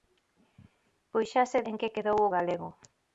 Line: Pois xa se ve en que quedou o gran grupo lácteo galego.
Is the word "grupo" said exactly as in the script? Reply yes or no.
no